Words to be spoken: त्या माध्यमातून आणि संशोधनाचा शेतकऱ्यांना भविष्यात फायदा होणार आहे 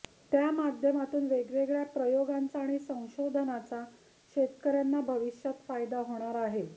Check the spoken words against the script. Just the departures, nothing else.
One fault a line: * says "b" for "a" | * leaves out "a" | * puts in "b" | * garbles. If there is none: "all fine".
* puts in "वेगवेगळ्या प्रयोगांचा"